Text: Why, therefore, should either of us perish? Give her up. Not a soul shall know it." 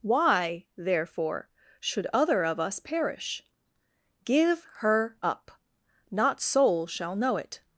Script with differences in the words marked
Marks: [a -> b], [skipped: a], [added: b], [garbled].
Why, therefore, should [either -> other] of us perish? Give her up. Not [skipped: a] soul shall know it."